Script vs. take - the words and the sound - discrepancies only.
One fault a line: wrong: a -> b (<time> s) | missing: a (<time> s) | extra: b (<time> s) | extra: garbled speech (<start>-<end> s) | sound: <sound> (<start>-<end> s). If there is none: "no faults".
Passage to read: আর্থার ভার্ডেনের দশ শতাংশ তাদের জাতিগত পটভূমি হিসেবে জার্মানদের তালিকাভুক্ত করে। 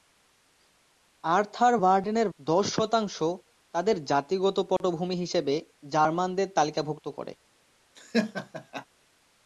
sound: dropout (4.8-4.8 s)
sound: laugh (8.0-8.9 s)